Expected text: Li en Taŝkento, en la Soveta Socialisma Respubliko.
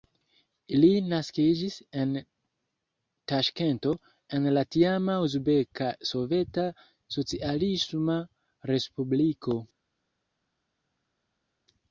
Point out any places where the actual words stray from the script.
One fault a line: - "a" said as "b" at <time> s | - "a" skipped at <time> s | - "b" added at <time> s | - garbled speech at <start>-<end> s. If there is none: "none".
- "naskiĝis" added at 1.1 s
- "tiama Uzbeka" added at 4.8 s